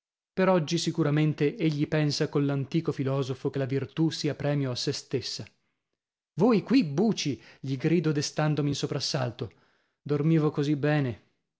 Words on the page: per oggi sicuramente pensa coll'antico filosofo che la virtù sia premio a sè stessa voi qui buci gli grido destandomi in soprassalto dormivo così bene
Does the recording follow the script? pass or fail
fail